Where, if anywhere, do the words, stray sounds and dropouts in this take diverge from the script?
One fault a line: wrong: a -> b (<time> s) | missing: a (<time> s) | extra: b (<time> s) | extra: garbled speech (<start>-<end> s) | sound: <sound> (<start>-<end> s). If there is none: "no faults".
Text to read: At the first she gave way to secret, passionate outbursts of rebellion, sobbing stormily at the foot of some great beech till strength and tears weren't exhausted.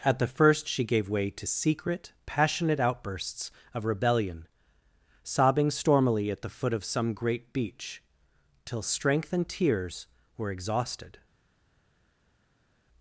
wrong: weren't -> were (10.4 s)